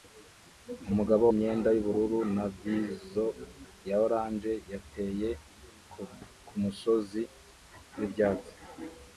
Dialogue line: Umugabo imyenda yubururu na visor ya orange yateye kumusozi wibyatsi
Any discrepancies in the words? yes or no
no